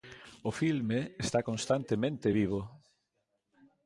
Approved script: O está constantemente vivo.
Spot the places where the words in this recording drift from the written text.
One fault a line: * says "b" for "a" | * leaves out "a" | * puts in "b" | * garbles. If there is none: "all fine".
* puts in "filme"